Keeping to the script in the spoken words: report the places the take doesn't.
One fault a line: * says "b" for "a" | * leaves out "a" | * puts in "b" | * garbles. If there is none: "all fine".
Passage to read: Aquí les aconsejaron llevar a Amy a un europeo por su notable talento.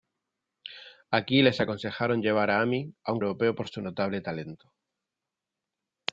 all fine